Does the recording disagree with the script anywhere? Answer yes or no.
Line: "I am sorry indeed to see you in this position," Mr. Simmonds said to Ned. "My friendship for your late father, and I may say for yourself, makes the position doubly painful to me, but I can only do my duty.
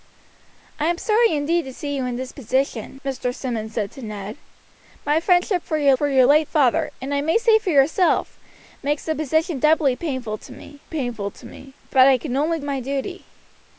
yes